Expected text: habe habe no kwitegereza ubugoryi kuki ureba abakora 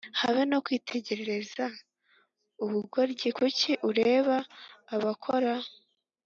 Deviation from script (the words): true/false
true